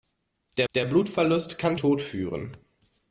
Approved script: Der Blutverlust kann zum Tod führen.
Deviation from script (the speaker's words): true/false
true